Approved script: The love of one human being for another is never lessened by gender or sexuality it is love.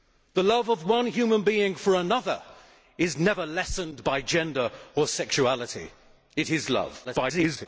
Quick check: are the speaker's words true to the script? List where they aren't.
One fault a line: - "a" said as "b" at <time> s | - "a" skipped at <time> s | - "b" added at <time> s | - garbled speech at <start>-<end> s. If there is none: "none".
- garbled speech at 7.0-7.7 s